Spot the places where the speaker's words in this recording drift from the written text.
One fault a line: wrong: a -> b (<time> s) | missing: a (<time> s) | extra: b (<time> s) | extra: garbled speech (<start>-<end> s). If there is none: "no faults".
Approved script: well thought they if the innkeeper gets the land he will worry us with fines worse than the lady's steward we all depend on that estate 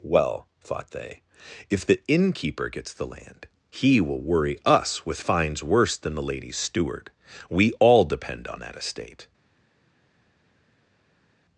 no faults